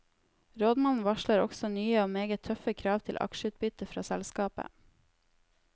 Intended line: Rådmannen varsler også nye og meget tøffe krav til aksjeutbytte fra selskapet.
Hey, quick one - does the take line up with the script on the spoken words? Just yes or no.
yes